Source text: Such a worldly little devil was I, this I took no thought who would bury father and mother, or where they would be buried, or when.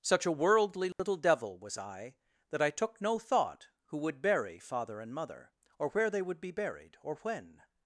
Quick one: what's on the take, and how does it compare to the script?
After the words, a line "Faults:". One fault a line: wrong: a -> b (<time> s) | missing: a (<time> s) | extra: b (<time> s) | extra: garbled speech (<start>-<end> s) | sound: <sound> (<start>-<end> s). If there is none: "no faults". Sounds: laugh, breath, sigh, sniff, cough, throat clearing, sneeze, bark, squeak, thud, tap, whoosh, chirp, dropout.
Such a worldly little devil was I, that I took no thought who would bury father and mother, or where they would be buried, or when.
Faults:
sound: dropout (0.9-1.0 s)
wrong: this -> that (2.5 s)